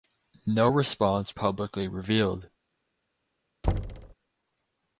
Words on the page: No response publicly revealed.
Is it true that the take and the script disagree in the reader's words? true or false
false